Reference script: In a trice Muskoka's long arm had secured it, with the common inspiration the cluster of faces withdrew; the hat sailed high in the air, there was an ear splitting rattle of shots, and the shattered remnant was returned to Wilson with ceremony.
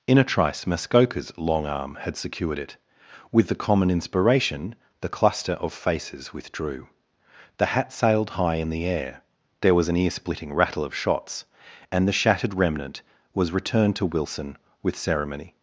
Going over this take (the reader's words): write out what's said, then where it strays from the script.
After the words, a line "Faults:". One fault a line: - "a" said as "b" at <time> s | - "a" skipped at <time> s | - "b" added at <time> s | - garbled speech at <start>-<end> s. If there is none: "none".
In a trice Muskoka's long arm had secured it, with the common inspiration the cluster of faces withdrew; the hat sailed high in the air, there was an ear splitting rattle of shots, and the shattered remnant was returned to Wilson with ceremony.
Faults:
none